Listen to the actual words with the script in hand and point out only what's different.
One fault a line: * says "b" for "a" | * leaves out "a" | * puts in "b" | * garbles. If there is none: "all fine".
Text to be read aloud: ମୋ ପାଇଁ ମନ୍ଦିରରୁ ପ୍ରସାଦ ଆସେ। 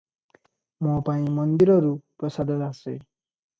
all fine